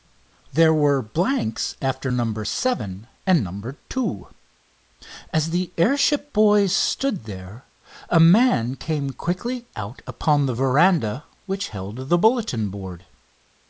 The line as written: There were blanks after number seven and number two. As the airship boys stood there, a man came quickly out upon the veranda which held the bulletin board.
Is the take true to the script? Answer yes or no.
yes